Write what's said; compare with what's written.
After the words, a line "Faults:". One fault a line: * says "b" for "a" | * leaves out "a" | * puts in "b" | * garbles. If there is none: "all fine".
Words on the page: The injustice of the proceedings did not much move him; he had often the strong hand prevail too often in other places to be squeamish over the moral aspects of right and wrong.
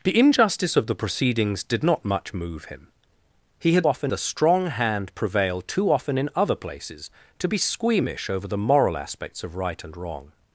The injustice of the proceedings did not much move him; he had often the strong hand prevail too often in other places to be squeamish over the moral aspects of right and wrong.
Faults:
all fine